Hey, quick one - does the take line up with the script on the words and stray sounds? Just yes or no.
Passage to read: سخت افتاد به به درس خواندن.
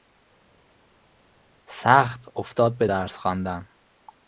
no